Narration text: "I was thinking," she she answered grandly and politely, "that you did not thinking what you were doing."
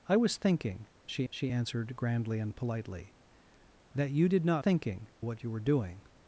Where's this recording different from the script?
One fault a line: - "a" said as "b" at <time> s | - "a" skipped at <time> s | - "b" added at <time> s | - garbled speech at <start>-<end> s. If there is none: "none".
none